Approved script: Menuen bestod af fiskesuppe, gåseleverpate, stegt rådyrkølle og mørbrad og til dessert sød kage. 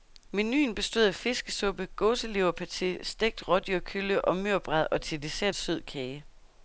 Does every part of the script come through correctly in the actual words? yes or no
yes